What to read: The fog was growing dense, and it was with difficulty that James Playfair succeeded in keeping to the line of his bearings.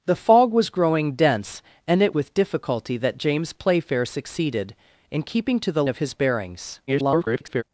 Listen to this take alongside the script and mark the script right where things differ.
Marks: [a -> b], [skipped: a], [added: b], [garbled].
The fog was growing dense, and it [skipped: was] with difficulty that James Playfair succeeded in keeping to the [skipped: line] of his bearings. [garbled]